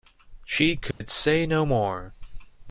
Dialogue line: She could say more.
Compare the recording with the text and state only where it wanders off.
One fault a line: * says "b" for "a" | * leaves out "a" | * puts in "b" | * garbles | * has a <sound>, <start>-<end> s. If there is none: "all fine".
* has a dropout, 0.9-1.0 s
* puts in "no"